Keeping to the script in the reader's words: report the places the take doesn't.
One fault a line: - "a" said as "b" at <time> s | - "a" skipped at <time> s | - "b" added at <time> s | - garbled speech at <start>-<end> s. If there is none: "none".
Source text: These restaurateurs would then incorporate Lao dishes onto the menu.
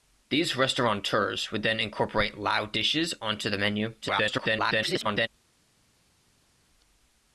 - garbled speech at 4.0-5.3 s